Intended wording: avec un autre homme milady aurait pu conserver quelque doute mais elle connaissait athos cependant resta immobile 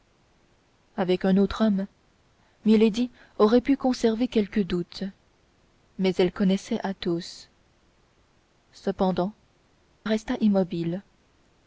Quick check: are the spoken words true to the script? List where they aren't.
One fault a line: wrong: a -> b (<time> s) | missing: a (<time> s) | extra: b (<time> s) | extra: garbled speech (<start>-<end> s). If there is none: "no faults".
no faults